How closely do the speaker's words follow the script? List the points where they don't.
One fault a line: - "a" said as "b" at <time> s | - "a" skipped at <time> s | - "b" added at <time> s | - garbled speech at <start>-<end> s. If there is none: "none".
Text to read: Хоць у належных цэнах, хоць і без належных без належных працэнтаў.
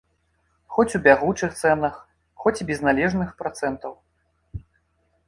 - "належных" said as "бягучых" at 1.1 s
- "без належных" skipped at 3.3 s